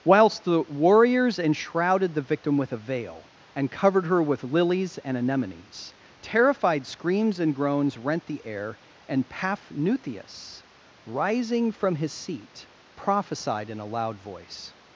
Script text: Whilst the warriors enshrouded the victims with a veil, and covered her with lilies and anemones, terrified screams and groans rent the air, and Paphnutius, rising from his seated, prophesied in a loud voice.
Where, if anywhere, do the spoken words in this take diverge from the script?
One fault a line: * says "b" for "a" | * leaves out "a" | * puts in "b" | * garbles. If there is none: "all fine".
* says "victim" for "victims"
* says "seat" for "seated"